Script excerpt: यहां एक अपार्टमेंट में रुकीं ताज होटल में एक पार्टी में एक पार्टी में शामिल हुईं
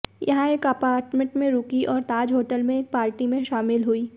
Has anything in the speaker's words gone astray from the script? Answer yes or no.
yes